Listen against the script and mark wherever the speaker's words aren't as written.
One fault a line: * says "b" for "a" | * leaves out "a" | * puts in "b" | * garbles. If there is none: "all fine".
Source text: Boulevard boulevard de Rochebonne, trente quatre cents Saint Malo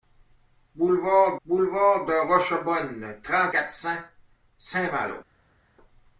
all fine